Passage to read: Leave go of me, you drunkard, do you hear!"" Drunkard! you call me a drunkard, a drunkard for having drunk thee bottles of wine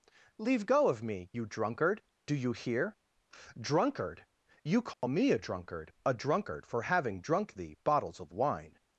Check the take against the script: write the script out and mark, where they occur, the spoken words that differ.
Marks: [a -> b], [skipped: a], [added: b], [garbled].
Leave go of me, you drunkard, do you hear!"" Drunkard! you call me a drunkard, a drunkard for having drunk thee bottles of wine